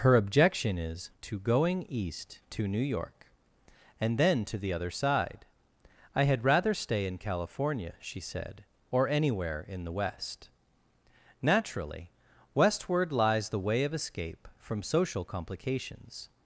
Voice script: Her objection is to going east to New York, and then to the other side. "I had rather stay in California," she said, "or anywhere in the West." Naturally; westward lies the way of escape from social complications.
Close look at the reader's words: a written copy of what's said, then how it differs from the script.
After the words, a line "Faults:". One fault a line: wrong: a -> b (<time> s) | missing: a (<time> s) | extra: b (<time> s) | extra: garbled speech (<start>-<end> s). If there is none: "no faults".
Her objection is to going east to New York, and then to the other side. "I had rather stay in California," she said, "or anywhere in the West." Naturally; westward lies the way of escape from social complications.
Faults:
no faults